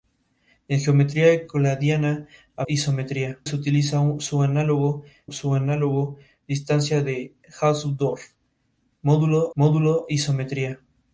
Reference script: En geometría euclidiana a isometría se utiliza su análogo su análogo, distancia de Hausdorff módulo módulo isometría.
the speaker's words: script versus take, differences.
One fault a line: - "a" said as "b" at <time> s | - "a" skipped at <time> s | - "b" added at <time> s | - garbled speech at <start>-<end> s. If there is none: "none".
none